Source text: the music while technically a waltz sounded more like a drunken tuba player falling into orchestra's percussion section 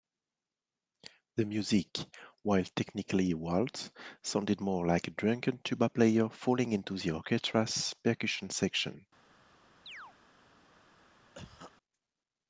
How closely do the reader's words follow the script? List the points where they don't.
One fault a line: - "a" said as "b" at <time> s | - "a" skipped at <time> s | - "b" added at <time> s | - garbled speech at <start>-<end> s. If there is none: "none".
- "the" added at 7.0 s